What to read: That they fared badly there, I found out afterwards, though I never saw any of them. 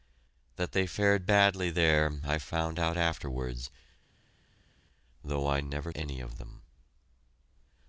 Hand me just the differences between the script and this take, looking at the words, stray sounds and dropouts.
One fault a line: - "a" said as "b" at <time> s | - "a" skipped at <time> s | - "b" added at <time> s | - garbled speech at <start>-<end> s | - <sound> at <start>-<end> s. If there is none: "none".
- "saw" skipped at 5.9 s